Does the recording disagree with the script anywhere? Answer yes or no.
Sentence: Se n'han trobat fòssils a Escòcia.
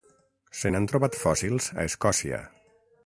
no